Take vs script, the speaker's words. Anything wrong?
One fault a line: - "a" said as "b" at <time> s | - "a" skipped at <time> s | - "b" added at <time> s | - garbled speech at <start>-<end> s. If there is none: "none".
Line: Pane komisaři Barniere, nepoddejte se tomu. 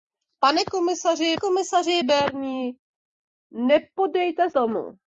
- "komisaři" added at 1.4 s
- "se" skipped at 4.5 s